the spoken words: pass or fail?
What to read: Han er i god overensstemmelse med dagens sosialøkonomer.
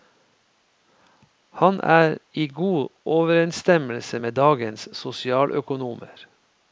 pass